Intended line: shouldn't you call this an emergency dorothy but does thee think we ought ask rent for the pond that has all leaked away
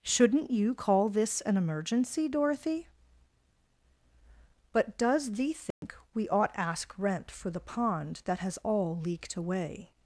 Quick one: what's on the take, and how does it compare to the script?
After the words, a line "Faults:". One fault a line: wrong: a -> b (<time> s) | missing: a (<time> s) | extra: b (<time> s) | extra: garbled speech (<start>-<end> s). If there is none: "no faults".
shouldn't you call this an emergency dorothy but does thee think we ought ask rent for the pond that has all leaked away
Faults:
no faults